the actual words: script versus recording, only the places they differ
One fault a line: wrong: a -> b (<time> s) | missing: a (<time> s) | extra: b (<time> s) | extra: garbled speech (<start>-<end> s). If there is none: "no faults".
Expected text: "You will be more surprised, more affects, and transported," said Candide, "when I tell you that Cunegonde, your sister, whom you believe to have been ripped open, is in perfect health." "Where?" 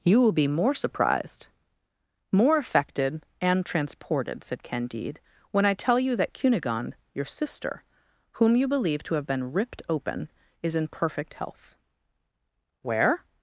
wrong: affects -> affected (2.6 s)